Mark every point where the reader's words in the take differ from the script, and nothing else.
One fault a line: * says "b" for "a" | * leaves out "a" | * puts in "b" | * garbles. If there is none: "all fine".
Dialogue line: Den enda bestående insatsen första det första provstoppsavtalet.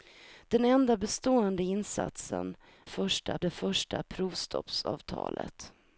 all fine